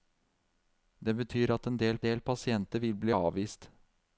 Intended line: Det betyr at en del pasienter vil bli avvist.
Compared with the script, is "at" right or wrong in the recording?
right